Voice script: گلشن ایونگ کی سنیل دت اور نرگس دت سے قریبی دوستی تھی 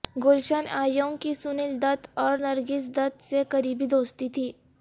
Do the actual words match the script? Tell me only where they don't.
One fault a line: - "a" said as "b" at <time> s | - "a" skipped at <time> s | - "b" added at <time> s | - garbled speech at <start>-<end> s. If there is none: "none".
none